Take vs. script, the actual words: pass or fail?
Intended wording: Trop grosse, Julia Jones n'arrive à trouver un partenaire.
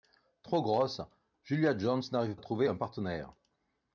pass